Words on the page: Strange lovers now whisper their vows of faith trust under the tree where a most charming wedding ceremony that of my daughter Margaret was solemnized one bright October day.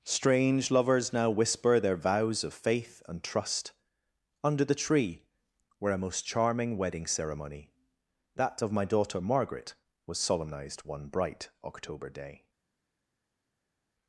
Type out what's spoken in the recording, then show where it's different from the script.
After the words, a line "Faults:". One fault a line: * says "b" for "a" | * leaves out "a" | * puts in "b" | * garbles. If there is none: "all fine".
Strange lovers now whisper their vows of faith and trust under the tree where a most charming wedding ceremony that of my daughter Margaret was solemnized one bright October day.
Faults:
* puts in "and"